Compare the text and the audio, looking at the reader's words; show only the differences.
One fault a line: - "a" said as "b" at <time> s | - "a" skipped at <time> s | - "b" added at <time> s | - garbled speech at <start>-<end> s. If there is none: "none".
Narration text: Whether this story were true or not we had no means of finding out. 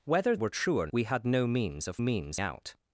- "this story" skipped at 0.3 s
- "not" skipped at 0.9 s
- "finding" said as "means" at 2.0 s